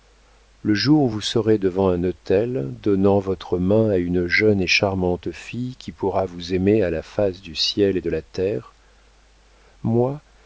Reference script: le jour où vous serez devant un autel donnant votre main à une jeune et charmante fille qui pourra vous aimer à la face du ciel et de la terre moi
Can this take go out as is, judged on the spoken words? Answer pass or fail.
pass